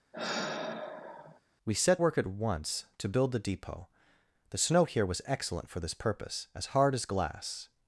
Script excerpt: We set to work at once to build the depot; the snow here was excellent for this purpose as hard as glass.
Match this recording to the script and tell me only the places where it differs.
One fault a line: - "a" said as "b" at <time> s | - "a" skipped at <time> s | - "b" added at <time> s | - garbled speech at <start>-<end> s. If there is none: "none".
- "to" skipped at 2.0 s